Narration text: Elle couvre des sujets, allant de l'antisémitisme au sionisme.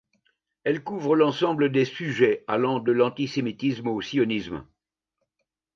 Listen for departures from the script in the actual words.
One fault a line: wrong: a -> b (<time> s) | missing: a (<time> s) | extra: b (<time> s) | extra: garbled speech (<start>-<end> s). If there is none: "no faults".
extra: l'ensemble (1.1 s)